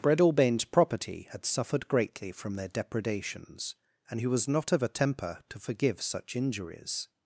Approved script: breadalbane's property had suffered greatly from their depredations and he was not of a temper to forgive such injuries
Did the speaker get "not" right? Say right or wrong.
right